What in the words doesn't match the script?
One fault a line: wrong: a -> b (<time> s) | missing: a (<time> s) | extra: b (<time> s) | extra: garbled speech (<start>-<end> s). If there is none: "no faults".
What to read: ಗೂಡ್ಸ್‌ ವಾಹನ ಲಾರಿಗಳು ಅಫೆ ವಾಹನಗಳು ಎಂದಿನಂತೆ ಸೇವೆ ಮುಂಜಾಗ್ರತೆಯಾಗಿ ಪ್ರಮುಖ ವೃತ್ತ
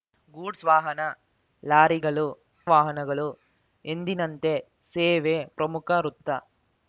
missing: ಅಫೆ (2.2 s)
missing: ಮುಂಜಾಗ್ರತೆಯಾಗಿ (5.4 s)